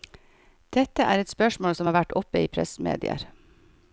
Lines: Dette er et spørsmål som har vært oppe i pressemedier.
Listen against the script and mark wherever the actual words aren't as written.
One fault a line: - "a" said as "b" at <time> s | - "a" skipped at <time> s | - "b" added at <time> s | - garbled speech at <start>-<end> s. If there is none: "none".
none